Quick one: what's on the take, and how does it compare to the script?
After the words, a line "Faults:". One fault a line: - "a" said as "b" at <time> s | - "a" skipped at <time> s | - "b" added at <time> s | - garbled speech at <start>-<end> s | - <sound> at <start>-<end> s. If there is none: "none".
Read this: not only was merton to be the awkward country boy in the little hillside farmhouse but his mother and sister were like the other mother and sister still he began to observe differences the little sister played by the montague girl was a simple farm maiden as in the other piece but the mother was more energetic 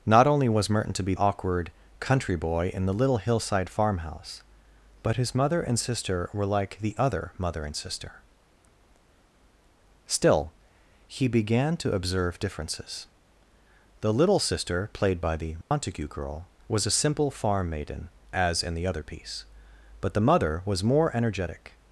not only was merton to be awkward country boy in the little hillside farmhouse but his mother and sister were like the other mother and sister still he began to observe differences the little sister played by the montague girl was a simple farm maiden as in the other piece but the mother was more energetic
Faults:
- "the" skipped at 1.1 s
- dropout at 15.6-15.7 s